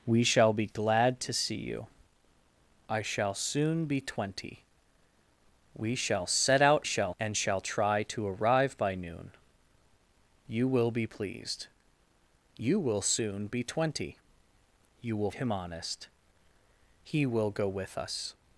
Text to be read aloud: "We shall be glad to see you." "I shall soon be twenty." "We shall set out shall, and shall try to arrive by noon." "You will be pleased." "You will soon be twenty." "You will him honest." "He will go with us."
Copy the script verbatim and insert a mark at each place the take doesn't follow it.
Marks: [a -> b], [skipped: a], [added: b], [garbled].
"We shall be glad to see you." "I shall soon be twenty." "We shall set out shall, and shall try to arrive by noon." "You will be pleased." "You will soon be twenty." "You will him honest." "He will go with us."